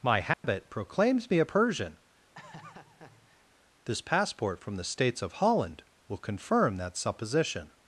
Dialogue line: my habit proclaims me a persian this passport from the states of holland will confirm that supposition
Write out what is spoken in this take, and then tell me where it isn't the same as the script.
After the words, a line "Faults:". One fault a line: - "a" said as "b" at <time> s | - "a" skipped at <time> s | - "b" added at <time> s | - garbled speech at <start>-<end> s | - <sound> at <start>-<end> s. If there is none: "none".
my habit proclaims me a persian this passport from the states of holland will confirm that supposition
Faults:
- dropout at 0.3-0.4 s
- laugh at 2.3-3.5 s